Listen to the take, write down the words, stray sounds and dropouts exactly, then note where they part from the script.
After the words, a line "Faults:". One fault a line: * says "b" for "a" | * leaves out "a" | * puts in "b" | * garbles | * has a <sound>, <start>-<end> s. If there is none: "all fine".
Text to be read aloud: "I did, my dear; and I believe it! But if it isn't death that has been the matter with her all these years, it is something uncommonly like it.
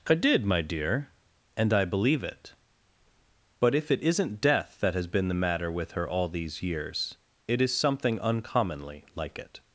"I did, my dear; and I believe it! But if it isn't death that has been the matter with her all these years, it is something uncommonly like it.
Faults:
all fine